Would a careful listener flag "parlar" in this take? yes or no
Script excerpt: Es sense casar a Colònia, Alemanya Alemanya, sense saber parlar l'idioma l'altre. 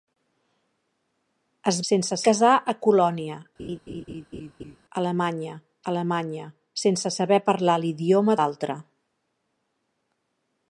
no